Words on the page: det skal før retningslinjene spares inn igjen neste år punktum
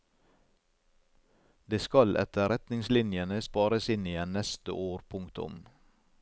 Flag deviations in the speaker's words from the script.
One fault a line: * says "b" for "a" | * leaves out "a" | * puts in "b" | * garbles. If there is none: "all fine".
* says "etter" for "før"